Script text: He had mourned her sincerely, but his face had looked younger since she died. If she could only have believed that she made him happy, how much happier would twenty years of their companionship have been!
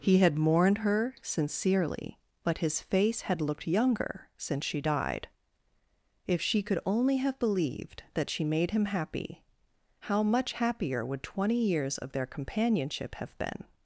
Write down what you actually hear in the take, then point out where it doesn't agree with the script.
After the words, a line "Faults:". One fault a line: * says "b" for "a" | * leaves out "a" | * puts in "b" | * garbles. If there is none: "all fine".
He had mourned her sincerely, but his face had looked younger since she died. If she could only have believed that she made him happy, how much happier would twenty years of their companionship have been!
Faults:
all fine